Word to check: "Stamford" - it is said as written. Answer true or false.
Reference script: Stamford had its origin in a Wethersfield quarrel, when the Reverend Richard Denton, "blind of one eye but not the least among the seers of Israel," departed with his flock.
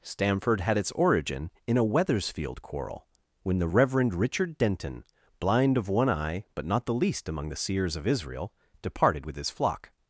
true